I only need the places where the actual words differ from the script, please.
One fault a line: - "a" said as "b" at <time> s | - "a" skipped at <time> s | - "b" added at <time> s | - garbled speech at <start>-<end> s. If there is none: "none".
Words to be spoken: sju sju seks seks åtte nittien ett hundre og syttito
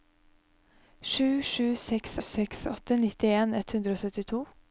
none